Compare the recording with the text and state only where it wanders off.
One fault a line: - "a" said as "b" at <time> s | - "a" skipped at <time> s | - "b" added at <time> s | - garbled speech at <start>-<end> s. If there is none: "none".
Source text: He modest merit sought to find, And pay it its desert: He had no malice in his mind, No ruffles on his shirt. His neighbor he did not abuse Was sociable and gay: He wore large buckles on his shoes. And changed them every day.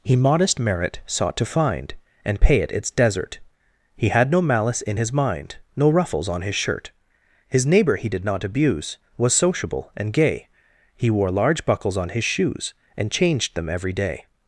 none